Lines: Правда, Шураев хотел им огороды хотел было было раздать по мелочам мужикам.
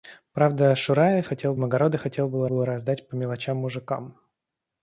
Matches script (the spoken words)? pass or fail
pass